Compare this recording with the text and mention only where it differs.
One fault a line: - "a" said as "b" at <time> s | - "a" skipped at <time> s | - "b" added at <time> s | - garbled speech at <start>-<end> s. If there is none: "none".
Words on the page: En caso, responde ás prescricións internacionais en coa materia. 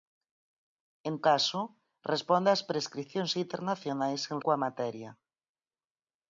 none